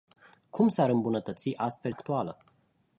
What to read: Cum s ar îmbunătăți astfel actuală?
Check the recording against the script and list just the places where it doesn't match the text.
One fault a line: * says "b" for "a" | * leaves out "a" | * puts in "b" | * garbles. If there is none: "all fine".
all fine